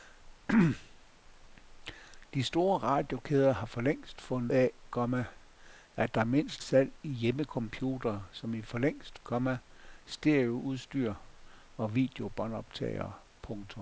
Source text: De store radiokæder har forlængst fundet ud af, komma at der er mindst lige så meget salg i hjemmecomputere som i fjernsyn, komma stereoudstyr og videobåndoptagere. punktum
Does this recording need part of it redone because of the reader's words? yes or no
yes